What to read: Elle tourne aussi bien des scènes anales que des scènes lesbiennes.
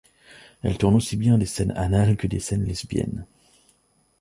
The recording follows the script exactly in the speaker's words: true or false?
true